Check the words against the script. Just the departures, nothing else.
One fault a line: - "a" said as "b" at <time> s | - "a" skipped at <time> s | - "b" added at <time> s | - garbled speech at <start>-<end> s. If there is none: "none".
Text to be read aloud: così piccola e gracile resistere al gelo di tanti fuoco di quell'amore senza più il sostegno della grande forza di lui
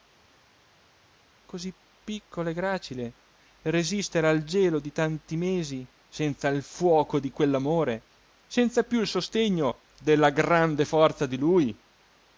- "mesi senza il" added at 5.4 s